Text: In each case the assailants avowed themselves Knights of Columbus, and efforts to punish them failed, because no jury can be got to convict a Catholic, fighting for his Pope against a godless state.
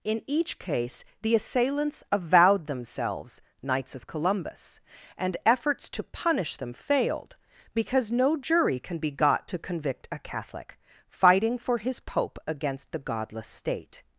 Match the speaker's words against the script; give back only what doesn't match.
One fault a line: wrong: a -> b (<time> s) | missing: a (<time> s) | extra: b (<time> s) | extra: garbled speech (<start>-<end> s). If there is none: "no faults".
wrong: a -> the (12.9 s)